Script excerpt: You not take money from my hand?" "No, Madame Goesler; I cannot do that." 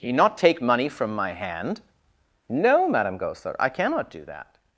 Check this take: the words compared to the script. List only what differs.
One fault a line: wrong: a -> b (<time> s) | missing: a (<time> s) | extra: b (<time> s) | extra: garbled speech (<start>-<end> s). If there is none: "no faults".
no faults